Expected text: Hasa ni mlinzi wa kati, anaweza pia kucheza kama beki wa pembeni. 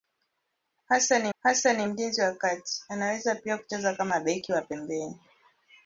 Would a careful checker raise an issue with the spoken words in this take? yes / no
yes